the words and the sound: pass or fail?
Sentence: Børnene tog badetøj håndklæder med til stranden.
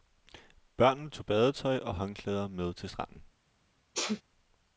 fail